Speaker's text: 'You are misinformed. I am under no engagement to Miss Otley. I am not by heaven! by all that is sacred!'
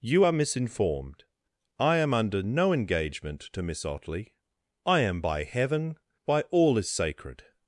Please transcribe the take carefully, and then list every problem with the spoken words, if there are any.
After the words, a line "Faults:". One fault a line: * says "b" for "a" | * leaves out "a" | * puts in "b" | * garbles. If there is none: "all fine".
'You are misinformed. I am under no engagement to Miss Otley. I am by heaven! by all is sacred!'
Faults:
* leaves out "not"
* leaves out "that"